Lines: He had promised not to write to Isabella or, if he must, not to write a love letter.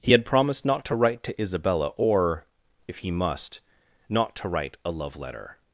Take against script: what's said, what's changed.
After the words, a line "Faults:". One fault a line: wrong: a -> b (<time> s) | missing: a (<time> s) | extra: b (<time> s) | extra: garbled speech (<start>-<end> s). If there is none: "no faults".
He had promised not to write to Isabella or, if he must, not to write a love letter.
Faults:
no faults